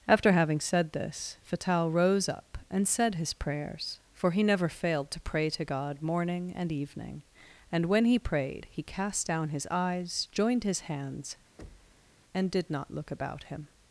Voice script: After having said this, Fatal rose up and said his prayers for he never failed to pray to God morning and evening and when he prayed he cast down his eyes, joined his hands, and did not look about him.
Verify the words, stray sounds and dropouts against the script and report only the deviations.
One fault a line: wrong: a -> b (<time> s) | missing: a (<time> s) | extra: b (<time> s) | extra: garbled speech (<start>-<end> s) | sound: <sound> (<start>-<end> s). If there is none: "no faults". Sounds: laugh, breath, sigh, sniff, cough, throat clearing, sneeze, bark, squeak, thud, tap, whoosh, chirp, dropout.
sound: thud (11.6-12.1 s)